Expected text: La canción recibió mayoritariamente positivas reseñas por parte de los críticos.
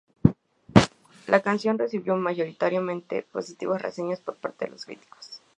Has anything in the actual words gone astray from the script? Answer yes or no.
no